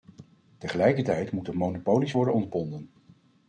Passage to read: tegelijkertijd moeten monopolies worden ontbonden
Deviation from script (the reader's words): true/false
false